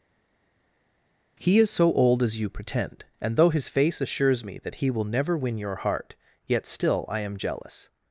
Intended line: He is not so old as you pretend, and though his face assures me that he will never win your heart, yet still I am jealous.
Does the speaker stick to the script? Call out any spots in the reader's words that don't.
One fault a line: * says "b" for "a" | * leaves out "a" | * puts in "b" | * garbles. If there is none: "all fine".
* leaves out "not"